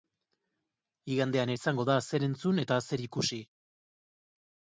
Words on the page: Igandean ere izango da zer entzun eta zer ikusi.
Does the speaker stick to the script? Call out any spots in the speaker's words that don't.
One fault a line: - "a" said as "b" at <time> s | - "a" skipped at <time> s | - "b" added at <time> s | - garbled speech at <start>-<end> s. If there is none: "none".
- "ere" skipped at 1.5 s